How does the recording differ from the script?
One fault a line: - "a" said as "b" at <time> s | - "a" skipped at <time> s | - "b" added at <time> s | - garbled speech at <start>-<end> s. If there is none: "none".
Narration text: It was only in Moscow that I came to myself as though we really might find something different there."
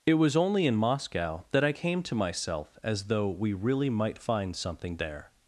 - "different" skipped at 5.0 s